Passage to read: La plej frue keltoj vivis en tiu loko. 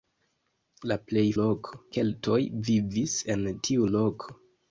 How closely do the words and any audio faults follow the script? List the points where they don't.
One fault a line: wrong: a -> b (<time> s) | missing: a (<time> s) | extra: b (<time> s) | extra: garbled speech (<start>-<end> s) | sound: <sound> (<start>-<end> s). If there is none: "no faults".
wrong: frue -> loko (1.4 s)